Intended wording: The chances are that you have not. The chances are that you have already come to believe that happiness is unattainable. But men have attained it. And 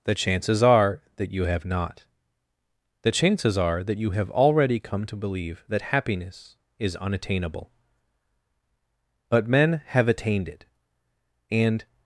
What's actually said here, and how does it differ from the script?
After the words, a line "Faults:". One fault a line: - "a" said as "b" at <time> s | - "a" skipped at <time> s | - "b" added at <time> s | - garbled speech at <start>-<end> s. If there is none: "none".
The chances are that you have not. The chances are that you have already come to believe that happiness is unattainable. But men have attained it. And
Faults:
none